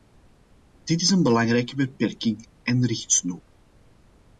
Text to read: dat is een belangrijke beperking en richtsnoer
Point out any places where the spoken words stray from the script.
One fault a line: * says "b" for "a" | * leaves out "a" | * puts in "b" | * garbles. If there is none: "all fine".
* says "dit" for "dat"